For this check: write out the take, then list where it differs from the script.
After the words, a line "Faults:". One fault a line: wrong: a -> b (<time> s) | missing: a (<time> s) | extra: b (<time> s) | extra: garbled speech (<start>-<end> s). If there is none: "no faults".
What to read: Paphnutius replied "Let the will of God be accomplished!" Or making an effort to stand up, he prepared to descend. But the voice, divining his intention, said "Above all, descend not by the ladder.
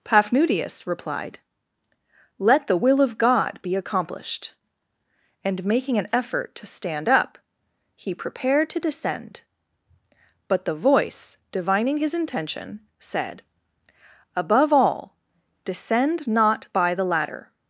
Paphnutius replied "Let the will of God be accomplished!" And making an effort to stand up, he prepared to descend. But the voice, divining his intention, said "Above all, descend not by the ladder.
Faults:
wrong: Or -> And (5.4 s)